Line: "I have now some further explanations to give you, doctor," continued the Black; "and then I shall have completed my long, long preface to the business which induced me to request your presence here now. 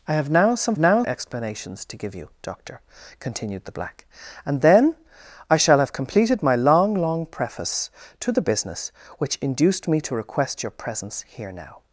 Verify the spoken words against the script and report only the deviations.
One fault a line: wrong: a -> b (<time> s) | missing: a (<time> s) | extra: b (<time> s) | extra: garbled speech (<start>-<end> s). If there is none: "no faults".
wrong: further -> now (0.8 s)